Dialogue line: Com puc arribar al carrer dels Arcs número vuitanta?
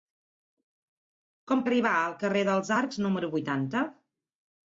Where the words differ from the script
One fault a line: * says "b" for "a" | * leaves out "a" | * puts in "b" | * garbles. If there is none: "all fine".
* leaves out "puc"